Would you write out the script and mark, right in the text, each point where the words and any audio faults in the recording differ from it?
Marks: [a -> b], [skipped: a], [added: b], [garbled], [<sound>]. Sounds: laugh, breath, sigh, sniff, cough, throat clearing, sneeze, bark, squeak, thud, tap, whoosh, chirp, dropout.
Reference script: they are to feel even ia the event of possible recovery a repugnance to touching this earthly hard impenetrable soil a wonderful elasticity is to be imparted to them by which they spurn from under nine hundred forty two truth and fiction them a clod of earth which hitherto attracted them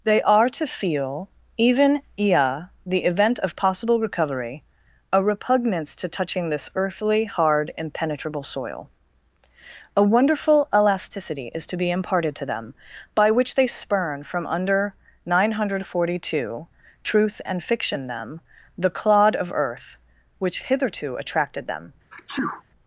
they are to feel even ia the event of possible recovery a repugnance to touching this earthly hard impenetrable soil a wonderful elasticity is to be imparted to them by which they spurn from under nine hundred forty two truth and fiction them [a -> the] clod of earth which hitherto attracted them [sneeze]